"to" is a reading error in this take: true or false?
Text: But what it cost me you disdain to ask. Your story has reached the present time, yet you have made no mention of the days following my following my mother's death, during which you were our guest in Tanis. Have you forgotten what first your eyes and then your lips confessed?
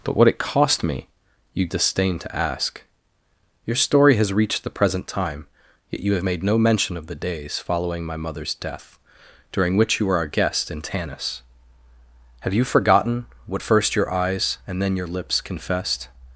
false